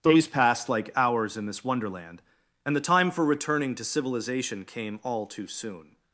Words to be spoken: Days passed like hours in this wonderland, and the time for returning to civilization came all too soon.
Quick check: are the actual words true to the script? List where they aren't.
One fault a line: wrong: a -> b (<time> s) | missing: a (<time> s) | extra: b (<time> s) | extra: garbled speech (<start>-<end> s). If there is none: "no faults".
no faults